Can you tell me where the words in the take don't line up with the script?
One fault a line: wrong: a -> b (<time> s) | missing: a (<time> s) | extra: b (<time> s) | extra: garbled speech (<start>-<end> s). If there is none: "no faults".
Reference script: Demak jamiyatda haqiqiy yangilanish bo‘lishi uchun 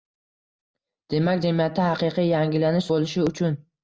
no faults